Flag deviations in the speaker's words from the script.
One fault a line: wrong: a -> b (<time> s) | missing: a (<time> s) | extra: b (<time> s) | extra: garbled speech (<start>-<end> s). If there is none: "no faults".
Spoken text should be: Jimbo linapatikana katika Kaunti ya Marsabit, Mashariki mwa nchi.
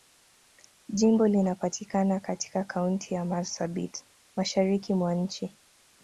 no faults